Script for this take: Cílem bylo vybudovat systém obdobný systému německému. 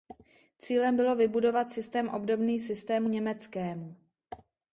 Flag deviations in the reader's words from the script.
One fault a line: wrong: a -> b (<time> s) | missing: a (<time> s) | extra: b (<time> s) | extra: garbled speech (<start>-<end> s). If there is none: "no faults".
no faults